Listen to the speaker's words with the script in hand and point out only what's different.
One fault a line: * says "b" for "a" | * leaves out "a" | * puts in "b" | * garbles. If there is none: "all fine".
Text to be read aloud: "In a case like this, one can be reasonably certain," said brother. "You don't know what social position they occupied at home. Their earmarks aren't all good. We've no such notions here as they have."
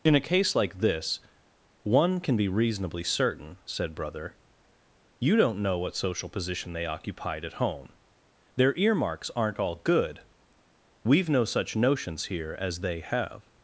all fine